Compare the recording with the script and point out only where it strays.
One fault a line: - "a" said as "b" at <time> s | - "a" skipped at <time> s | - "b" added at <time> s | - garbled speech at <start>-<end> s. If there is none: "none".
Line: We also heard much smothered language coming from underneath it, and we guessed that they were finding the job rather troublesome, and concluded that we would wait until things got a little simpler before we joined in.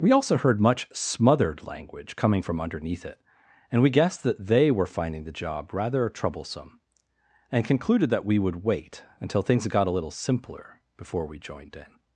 none